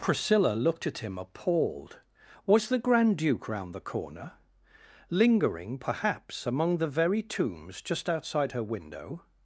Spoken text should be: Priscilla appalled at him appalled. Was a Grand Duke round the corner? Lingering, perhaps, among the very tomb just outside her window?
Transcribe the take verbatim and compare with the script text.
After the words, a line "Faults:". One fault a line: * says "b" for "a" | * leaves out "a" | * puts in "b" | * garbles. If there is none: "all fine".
Priscilla looked at him appalled. Was the Grand Duke round the corner? Lingering, perhaps, among the very tombs just outside her window?
Faults:
* says "looked" for "appalled"
* says "the" for "a"
* says "tombs" for "tomb"